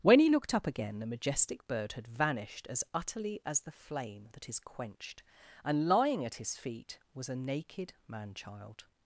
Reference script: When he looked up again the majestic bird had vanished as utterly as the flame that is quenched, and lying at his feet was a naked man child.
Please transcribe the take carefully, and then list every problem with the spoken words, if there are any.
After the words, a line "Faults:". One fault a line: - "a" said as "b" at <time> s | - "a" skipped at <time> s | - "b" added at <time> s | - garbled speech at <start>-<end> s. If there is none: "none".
When he looked up again the majestic bird had vanished as utterly as the flame that is quenched, and lying at his feet was a naked man child.
Faults:
none